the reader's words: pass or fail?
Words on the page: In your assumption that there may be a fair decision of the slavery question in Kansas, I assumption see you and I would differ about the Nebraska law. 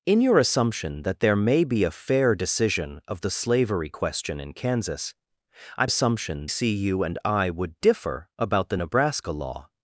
pass